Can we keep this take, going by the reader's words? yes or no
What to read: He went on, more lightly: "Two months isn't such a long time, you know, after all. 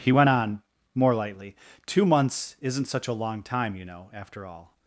yes